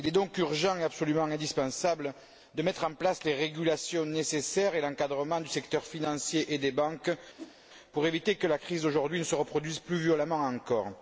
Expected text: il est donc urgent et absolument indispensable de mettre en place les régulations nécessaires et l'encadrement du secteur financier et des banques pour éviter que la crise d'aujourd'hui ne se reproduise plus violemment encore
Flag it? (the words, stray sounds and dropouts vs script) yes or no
yes